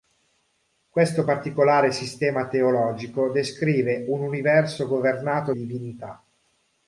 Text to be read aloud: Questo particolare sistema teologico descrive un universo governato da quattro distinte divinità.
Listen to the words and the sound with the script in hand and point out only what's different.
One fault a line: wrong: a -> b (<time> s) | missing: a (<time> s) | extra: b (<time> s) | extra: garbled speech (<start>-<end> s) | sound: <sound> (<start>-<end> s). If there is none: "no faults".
missing: da quattro distinte (5.5 s)